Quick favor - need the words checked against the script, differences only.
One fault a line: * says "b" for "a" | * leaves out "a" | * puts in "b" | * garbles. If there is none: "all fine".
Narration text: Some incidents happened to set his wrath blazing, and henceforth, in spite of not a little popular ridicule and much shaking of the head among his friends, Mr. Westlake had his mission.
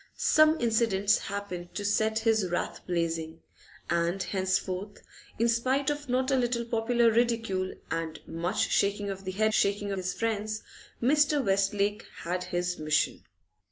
* says "shaking" for "among"